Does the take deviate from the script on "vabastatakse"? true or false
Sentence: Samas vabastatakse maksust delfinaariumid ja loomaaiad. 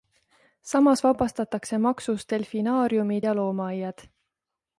false